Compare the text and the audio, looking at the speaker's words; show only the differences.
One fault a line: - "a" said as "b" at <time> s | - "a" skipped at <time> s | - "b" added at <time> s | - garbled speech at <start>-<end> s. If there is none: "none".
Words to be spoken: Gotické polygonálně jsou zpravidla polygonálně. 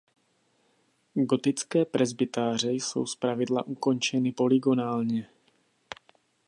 - "polygonálně" said as "presbytáře" at 1.8 s
- "ukončeny" added at 3.6 s